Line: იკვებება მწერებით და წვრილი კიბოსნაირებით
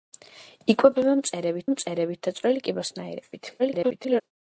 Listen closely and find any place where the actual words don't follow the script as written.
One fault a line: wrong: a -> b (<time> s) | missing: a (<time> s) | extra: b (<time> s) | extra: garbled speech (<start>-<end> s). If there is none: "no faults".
extra: მწერებით (1.7 s)
extra: garbled speech (3.6-4.2 s)